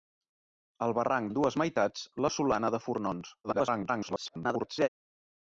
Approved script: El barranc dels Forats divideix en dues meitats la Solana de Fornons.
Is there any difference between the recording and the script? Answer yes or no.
yes